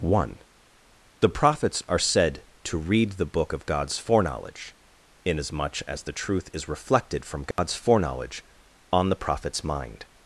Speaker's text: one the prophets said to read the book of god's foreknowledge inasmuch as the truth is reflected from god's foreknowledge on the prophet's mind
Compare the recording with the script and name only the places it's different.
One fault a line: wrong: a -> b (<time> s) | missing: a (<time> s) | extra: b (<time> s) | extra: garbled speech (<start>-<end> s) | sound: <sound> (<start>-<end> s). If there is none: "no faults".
extra: are (1.9 s)
sound: dropout (7.5-7.6 s)